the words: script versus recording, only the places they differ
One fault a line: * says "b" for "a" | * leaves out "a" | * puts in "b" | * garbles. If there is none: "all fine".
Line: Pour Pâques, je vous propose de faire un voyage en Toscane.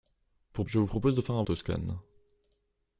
* leaves out "Pâques"
* leaves out "voyage en"